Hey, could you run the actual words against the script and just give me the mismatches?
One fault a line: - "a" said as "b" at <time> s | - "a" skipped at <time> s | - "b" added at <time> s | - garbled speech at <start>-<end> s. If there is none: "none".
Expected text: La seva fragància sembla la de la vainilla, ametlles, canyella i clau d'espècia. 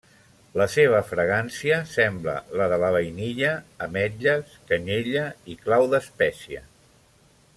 none